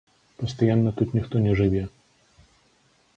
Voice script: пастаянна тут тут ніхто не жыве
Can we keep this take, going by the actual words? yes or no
no